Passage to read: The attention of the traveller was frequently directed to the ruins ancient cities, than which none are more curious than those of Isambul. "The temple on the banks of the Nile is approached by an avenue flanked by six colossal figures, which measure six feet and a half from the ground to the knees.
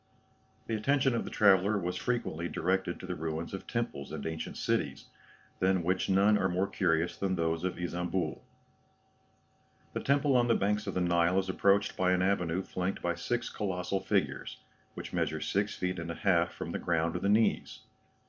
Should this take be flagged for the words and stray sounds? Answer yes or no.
yes